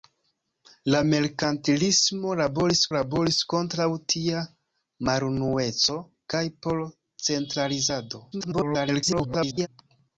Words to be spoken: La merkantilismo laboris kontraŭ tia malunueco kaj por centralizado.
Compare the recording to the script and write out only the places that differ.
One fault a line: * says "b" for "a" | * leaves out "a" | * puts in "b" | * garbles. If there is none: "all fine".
* puts in "laboris"
* garbles